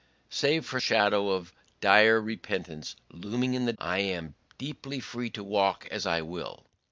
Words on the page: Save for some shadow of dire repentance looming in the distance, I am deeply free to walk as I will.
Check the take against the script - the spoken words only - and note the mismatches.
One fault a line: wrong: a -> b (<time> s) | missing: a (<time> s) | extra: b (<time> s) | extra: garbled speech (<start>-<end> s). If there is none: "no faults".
missing: some (0.8 s)
missing: distance (3.7 s)